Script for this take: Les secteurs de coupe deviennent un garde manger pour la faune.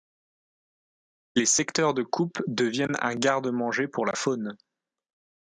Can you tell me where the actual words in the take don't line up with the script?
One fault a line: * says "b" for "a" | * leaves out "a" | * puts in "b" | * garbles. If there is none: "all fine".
all fine